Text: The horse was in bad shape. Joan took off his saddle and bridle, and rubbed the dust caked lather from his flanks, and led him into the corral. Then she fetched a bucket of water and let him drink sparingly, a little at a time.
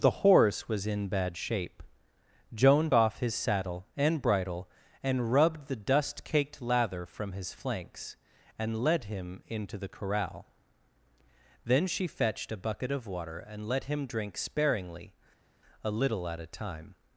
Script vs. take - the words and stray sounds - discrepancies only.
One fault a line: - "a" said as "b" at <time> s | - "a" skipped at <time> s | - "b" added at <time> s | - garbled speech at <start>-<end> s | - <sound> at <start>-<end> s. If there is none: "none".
- "took" skipped at 2.9 s